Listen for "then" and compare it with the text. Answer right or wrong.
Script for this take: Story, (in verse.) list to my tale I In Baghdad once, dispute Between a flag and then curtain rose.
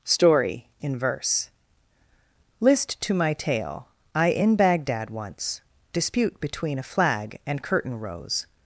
wrong